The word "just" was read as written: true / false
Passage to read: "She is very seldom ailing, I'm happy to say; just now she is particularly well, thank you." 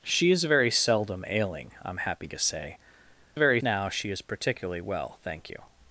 false